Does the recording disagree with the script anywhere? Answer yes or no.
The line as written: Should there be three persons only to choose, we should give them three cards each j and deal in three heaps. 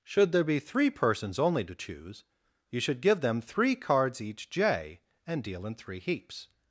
yes